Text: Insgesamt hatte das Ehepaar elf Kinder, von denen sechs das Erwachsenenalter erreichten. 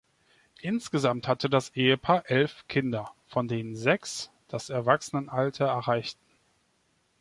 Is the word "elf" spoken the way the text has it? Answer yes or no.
yes